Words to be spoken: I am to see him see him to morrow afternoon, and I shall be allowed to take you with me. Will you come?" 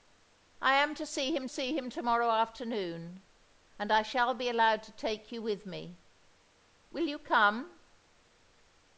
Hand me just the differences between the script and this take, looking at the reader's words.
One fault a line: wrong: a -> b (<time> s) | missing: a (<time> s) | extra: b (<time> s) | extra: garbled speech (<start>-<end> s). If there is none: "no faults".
no faults